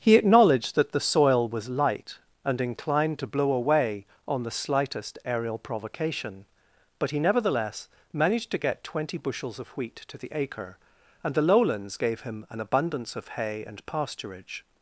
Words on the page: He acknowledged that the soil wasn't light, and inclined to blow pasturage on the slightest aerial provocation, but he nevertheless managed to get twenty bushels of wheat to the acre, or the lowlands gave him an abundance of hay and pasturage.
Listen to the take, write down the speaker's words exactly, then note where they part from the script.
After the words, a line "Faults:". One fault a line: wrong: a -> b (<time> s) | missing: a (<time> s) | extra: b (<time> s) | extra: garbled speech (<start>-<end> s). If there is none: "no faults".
He acknowledged that the soil was light, and inclined to blow away on the slightest aerial provocation, but he nevertheless managed to get twenty bushels of wheat to the acre, and the lowlands gave him an abundance of hay and pasturage.
Faults:
wrong: wasn't -> was (1.5 s)
wrong: pasturage -> away (3.5 s)
wrong: or -> and (11.2 s)